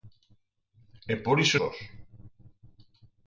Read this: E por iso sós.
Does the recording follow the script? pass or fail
pass